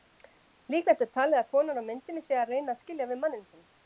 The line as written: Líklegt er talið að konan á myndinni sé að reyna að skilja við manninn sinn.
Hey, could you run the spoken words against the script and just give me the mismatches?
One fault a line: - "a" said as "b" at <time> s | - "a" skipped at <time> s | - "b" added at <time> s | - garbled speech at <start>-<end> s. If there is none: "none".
none